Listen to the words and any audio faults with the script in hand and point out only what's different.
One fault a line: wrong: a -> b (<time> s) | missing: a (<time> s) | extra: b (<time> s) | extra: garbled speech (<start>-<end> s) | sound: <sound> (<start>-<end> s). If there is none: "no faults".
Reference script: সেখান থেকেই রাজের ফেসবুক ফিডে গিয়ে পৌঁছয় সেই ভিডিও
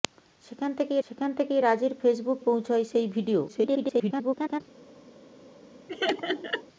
extra: সেখান থেকেই (1.0 s)
missing: ফিডে গিয়ে (2.4 s)
extra: garbled speech (3.5-4.6 s)
sound: laugh (5.9-6.6 s)